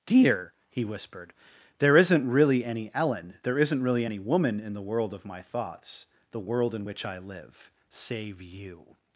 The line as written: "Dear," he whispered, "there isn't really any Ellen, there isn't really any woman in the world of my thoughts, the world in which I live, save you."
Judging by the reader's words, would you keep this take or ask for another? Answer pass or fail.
pass